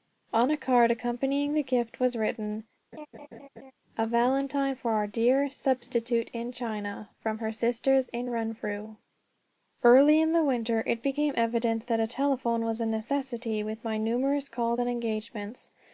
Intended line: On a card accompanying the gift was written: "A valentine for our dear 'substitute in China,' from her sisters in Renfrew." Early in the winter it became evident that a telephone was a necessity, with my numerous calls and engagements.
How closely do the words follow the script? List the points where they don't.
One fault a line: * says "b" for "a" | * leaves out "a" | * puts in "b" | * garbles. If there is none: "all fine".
all fine